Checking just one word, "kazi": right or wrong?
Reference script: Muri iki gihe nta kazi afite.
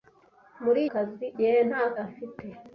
wrong